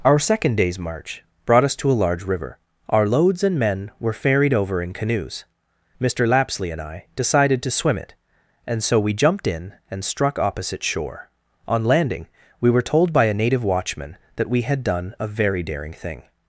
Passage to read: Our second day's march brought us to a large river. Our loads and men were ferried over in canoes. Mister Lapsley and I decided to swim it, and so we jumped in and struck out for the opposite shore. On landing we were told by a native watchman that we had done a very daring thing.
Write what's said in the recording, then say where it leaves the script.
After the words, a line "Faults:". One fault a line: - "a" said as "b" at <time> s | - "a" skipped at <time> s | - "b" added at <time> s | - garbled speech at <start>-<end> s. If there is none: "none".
Our second day's march brought us to a large river. Our loads and men were ferried over in canoes. Mister Lapsley and I decided to swim it, and so we jumped in and struck opposite shore. On landing we were told by a native watchman that we had done a very daring thing.
Faults:
- "out for the" skipped at 10.4 s